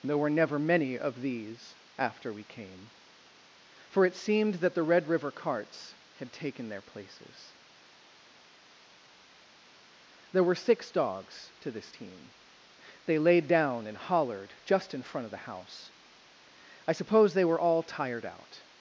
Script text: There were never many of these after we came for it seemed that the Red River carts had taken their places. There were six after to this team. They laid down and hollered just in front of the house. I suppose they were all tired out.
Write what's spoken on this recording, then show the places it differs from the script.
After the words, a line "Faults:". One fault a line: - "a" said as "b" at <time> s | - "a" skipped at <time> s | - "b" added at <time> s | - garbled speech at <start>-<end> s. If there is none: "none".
There were never many of these after we came for it seemed that the Red River carts had taken their places. There were six dogs to this team. They laid down and hollered just in front of the house. I suppose they were all tired out.
Faults:
- "after" said as "dogs" at 10.9 s